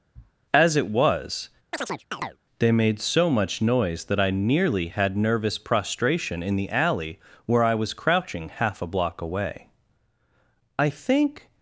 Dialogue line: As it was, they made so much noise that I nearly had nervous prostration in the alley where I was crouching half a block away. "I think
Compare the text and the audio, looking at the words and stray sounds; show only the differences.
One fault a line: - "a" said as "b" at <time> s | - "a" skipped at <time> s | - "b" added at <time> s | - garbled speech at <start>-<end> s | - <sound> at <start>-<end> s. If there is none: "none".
- sniff at 0.1-0.3 s
- chirp at 1.7-2.4 s